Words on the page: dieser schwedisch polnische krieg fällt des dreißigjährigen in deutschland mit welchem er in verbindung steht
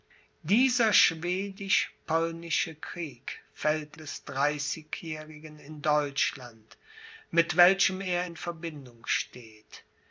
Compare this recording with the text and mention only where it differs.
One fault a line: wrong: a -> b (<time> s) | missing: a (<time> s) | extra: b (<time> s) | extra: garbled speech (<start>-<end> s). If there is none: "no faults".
no faults